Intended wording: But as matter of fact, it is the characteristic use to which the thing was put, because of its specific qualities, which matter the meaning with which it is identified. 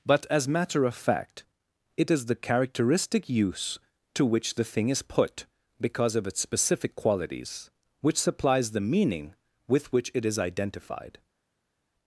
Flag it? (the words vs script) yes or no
yes